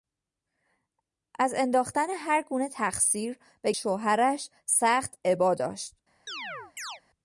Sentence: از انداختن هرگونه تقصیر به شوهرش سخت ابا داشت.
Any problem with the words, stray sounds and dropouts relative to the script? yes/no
yes